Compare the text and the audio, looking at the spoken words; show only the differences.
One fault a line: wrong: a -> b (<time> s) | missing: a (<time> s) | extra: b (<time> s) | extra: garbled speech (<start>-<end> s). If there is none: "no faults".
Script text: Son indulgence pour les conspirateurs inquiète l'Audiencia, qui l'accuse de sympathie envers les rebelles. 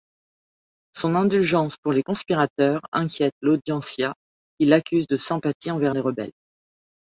no faults